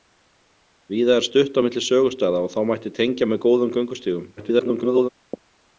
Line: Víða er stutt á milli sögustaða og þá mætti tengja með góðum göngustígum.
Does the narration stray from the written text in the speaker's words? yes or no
yes